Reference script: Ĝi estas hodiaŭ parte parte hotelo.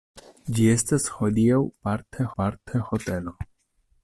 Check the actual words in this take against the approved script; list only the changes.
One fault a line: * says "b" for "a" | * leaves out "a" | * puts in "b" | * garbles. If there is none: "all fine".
all fine